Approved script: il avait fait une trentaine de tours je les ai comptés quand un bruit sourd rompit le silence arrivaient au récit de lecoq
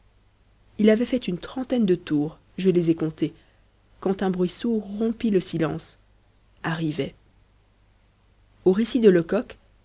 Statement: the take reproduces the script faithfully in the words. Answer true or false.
true